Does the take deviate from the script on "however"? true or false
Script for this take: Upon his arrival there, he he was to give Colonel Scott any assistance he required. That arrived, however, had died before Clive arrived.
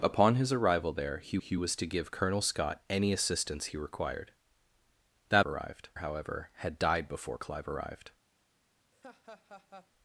false